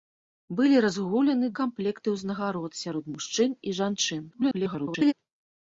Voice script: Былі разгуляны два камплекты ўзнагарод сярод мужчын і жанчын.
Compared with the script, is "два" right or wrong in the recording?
wrong